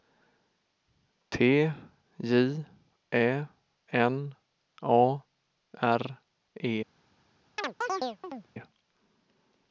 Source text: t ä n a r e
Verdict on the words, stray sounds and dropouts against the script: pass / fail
fail